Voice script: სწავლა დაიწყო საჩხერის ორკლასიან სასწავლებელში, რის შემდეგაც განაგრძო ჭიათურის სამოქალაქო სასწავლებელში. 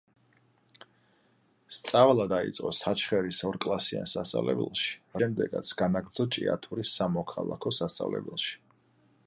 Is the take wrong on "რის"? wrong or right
wrong